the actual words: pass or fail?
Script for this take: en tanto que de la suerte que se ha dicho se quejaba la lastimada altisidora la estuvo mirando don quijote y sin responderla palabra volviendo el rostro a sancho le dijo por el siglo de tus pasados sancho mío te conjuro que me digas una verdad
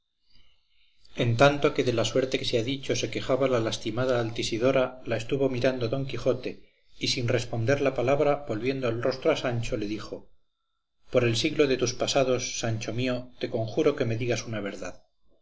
pass